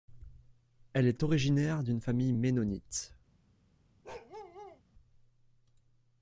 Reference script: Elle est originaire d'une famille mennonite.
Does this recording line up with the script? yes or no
yes